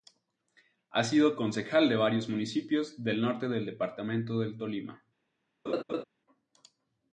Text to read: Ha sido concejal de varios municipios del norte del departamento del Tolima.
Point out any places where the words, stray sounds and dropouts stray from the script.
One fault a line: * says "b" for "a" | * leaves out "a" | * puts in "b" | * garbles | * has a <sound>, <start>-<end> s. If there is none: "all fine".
* has a laugh, 5.7-6.0 s